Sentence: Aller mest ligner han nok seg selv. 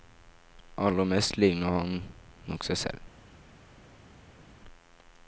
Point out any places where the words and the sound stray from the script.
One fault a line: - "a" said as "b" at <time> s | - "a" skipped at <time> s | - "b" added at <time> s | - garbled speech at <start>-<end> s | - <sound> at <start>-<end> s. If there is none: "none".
none